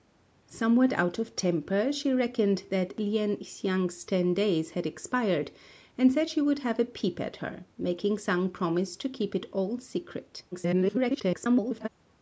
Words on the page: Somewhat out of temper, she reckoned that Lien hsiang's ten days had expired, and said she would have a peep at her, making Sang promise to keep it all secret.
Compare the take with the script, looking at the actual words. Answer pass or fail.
fail